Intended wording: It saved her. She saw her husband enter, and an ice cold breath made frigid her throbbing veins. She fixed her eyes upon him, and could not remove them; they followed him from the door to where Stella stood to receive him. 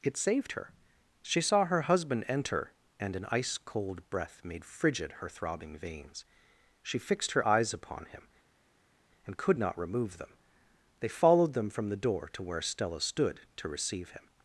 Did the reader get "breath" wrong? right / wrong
right